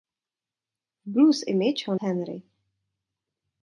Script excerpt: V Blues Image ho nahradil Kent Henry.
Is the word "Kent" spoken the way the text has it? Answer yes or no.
no